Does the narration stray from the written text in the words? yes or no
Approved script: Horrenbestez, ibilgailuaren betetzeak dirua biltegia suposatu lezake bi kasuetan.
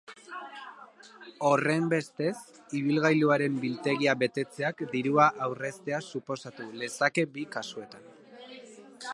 yes